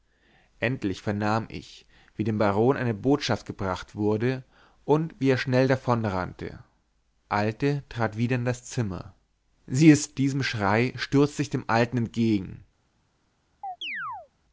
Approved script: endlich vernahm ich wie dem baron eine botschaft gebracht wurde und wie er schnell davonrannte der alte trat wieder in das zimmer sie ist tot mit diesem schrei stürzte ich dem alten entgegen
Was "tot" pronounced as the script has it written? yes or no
no